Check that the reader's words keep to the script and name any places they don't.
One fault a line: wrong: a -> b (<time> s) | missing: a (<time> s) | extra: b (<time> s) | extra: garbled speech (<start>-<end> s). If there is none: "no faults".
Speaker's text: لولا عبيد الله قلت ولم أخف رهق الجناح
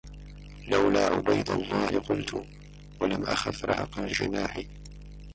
no faults